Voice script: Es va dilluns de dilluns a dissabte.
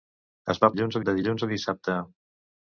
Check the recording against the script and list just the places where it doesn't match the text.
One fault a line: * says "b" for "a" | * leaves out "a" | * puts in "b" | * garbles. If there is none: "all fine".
all fine